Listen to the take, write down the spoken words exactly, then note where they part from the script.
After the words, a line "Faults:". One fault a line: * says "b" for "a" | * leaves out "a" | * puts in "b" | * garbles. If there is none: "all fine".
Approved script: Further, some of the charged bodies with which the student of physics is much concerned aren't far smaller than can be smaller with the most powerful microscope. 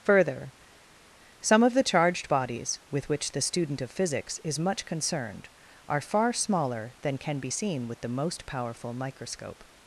Further, some of the charged bodies with which the student of physics is much concerned are far smaller than can be seen with the most powerful microscope.
Faults:
* says "are" for "aren't"
* says "seen" for "smaller"